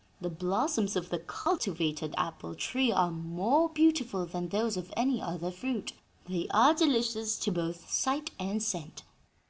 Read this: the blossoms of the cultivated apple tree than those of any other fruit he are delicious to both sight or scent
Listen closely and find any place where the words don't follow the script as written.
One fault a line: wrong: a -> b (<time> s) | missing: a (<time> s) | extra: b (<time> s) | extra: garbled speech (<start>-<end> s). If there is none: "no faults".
extra: are more beautiful (2.9 s)
wrong: he -> they (6.2 s)
wrong: or -> and (8.4 s)